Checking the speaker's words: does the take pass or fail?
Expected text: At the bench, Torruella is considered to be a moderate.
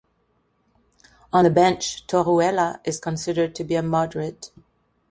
fail